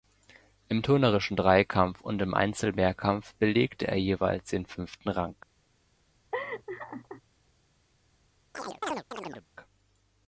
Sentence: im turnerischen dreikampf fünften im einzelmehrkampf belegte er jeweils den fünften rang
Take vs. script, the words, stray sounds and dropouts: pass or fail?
fail